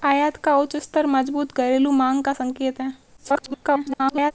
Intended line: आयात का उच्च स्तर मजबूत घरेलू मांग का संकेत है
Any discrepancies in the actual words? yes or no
yes